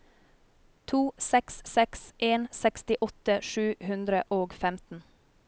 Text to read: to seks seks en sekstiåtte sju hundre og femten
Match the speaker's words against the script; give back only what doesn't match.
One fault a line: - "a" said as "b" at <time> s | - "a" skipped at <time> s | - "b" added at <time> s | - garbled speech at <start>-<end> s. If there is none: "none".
none